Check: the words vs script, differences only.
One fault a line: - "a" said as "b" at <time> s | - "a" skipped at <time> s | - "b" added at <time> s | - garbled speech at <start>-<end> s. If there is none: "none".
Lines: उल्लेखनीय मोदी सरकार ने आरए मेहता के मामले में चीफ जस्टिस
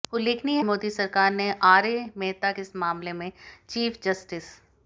none